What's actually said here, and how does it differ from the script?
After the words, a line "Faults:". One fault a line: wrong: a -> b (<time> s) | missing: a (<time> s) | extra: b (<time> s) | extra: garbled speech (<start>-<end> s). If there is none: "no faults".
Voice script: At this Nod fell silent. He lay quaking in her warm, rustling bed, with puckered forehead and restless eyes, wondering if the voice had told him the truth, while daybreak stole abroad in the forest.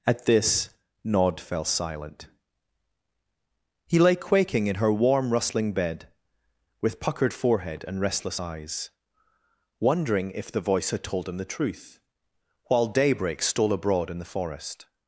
At this Nod fell silent. He lay quaking in her warm, rustling bed, with puckered forehead and restless eyes, wondering if the voice had told him the truth, while daybreak stole abroad in the forest.
Faults:
no faults